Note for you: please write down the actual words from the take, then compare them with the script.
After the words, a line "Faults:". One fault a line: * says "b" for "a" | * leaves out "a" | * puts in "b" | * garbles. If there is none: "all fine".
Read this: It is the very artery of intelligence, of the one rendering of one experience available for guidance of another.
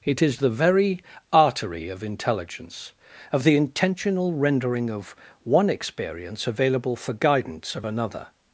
It is the very artery of intelligence, of the intentional rendering of one experience available for guidance of another.
Faults:
* says "intentional" for "one"